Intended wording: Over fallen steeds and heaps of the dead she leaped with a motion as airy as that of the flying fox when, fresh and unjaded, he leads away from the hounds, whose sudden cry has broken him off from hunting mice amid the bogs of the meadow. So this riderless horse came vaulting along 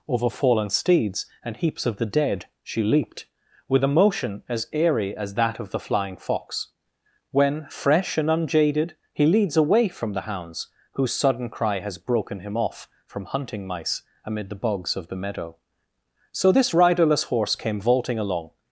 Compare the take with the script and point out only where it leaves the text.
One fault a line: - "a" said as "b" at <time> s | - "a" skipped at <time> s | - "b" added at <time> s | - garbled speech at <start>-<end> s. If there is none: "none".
none